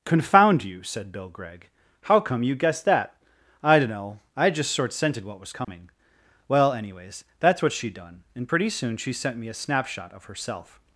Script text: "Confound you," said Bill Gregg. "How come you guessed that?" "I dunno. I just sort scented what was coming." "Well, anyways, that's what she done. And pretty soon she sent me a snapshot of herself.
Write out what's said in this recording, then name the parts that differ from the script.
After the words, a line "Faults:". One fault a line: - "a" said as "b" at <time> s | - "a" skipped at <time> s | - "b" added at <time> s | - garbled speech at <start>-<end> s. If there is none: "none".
"Confound you," said Bill Gregg. "How come you guessed that?" "I dunno. I just sort scented what was coming." "Well, anyways, that's what she done. And pretty soon she sent me a snapshot of herself.
Faults:
none